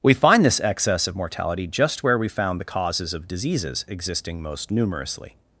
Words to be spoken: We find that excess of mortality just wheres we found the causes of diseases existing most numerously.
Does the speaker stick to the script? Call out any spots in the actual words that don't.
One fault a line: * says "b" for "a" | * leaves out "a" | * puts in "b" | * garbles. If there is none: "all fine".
* says "this" for "that"
* says "where" for "wheres"